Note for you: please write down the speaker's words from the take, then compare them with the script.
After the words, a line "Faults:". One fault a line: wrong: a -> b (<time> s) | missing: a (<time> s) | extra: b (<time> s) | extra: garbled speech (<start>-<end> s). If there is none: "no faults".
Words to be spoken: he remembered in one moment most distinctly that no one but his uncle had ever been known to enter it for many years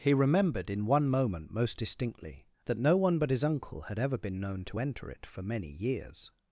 he remembered in one moment most distinctly that no one but his uncle had ever been known to enter it for many years
Faults:
no faults